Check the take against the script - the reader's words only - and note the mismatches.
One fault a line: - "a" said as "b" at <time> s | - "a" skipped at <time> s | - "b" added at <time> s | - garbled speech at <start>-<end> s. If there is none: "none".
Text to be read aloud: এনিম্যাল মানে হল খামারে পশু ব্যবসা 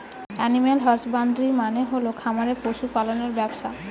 - "হসবান্দ্রি" added at 0.8 s
- "পালনের" added at 2.9 s